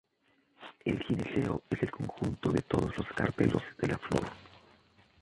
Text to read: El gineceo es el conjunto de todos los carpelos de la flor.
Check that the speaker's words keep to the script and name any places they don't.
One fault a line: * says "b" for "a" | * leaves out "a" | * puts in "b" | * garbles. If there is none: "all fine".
all fine